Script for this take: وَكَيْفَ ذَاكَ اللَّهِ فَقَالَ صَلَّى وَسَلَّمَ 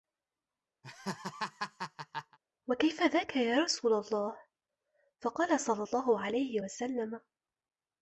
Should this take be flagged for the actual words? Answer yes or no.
yes